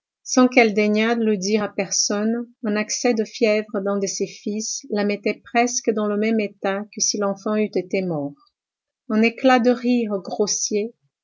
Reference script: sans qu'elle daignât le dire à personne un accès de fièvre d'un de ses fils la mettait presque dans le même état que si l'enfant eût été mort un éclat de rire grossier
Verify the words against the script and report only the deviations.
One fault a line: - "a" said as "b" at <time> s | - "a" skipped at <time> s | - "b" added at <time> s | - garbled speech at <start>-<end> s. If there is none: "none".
none